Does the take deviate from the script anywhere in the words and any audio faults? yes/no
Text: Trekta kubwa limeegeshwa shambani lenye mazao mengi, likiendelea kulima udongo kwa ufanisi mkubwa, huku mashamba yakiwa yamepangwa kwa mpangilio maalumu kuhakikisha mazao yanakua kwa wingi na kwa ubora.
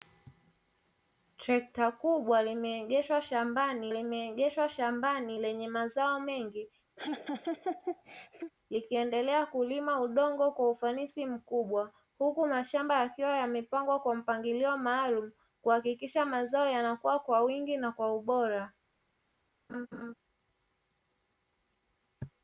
yes